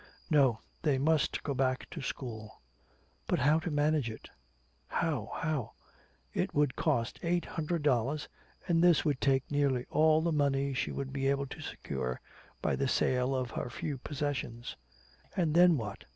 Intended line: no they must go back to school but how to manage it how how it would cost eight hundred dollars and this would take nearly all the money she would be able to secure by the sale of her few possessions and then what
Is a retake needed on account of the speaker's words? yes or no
no